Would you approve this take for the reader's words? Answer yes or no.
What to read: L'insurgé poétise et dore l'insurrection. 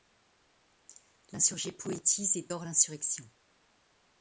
yes